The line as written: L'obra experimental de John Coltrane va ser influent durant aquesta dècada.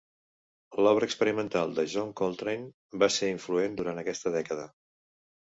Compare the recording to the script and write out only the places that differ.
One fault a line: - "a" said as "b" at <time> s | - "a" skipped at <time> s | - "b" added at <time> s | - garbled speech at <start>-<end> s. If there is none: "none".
none